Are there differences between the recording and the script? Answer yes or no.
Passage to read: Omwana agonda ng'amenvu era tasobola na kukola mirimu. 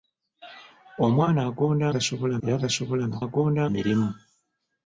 yes